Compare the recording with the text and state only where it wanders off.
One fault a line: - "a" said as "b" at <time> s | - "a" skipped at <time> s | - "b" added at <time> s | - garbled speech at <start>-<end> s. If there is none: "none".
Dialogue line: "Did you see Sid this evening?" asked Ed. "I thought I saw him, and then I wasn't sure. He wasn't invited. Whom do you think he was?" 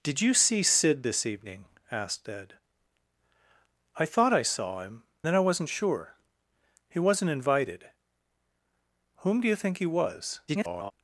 - "and" skipped at 5.0 s
- garbled speech at 10.5-10.9 s